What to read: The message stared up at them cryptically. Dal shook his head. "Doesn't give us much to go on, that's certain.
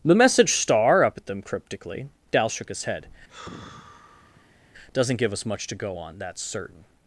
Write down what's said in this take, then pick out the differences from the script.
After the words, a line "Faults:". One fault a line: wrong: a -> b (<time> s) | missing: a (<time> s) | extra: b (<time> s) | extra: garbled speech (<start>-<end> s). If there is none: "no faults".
The message star up at them cryptically. Dal shook his head. "Doesn't give us much to go on, that's certain.
Faults:
wrong: stared -> star (0.6 s)